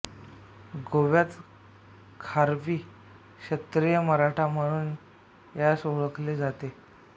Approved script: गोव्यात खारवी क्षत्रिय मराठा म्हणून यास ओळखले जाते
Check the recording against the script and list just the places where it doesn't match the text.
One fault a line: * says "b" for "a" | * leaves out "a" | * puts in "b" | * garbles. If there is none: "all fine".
all fine